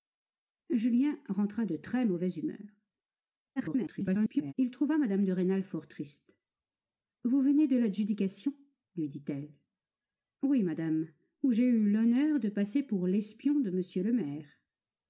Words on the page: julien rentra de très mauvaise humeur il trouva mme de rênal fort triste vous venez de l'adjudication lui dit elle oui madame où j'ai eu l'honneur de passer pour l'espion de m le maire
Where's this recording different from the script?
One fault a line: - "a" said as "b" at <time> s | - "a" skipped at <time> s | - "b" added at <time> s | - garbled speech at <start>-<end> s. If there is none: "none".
- garbled speech at 3.6-4.5 s